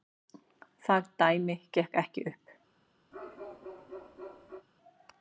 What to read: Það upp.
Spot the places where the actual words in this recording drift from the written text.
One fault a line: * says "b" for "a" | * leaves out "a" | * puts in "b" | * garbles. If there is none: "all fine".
* puts in "dæmi gekk ekki"